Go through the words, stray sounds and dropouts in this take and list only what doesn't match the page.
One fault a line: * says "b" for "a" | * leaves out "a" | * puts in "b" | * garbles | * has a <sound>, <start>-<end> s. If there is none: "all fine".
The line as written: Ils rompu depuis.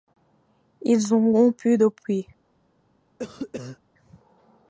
* puts in "ont"
* has a cough, 3.2-3.8 s